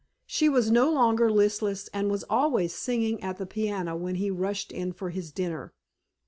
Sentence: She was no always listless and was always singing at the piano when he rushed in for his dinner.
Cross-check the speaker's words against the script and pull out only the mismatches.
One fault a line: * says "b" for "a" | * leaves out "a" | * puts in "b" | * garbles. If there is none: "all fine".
* says "longer" for "always"